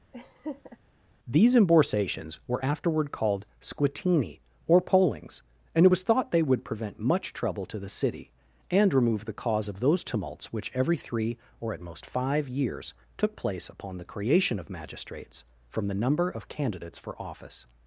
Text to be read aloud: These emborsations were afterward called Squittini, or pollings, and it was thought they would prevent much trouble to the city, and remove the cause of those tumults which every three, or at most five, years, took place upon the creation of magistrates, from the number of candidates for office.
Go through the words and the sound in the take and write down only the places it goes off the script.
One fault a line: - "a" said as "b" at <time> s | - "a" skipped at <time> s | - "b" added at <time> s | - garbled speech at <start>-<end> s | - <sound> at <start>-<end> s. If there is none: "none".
- laugh at 0.1-0.8 s